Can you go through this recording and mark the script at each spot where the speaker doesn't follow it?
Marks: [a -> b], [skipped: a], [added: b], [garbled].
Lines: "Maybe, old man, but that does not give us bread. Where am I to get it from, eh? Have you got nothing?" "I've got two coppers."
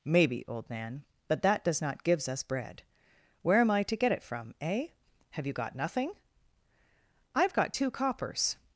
"Maybe, old man, but that does not [give -> gives] us bread. Where am I to get it from, eh? Have you got nothing?" "I've got two coppers."